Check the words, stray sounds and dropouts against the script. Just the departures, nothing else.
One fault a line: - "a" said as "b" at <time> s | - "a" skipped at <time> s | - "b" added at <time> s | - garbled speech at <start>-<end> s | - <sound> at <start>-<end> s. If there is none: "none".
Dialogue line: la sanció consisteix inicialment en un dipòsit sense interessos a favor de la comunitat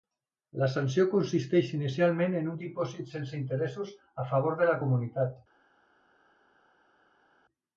none